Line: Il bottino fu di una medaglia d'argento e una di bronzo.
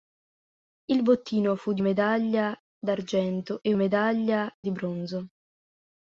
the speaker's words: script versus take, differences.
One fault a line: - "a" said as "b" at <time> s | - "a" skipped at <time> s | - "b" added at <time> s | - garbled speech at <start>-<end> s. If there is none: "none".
- "una" skipped at 1.8 s
- "una" said as "medaglia" at 3.7 s